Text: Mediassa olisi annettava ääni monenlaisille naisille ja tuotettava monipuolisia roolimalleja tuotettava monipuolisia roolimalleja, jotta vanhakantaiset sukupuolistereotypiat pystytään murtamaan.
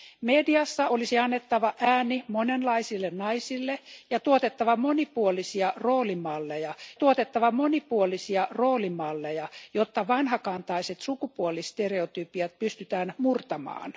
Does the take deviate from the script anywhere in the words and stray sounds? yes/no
no